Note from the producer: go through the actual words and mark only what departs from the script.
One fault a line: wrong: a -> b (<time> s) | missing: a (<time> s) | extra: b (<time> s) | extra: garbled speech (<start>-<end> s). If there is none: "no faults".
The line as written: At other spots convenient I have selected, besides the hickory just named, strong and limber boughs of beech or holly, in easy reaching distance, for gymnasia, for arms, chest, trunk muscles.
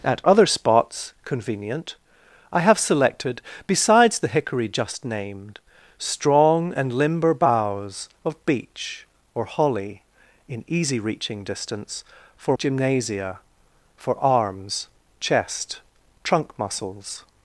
no faults